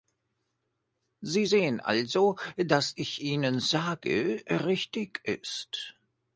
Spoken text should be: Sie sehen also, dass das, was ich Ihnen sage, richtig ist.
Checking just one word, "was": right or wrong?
wrong